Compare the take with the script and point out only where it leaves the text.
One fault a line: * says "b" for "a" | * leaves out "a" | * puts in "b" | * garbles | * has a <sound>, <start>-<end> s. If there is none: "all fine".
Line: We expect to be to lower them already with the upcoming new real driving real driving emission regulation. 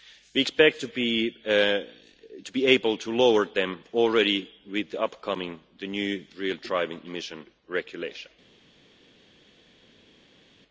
* puts in "able"
* leaves out "real driving"